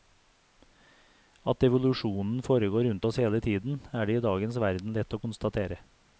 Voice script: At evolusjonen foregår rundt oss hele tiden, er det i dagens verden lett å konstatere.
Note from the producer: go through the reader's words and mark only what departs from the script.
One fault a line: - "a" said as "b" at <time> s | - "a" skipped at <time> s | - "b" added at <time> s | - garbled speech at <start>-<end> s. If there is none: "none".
none